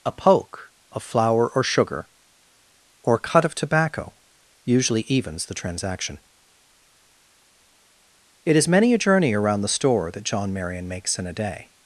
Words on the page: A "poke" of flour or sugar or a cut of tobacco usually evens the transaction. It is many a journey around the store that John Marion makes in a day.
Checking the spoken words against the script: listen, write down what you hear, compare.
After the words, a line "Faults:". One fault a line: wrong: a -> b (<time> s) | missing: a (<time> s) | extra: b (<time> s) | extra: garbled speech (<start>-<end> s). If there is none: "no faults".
A "poke" of flour or sugar or a cut of tobacco usually evens the transaction. It is many a journey around the store that John Marion makes in a day.
Faults:
no faults